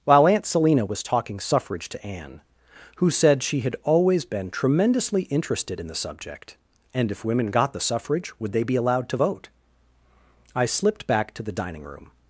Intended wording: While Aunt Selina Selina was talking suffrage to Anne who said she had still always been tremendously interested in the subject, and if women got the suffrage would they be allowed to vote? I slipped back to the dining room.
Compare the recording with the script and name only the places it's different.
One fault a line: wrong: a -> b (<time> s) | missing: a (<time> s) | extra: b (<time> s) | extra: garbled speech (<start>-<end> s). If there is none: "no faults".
missing: Selina (0.8 s)
missing: still (3.8 s)